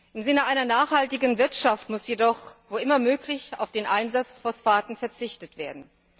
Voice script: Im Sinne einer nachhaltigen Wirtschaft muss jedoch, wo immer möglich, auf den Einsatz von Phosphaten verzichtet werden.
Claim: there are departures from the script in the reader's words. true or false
true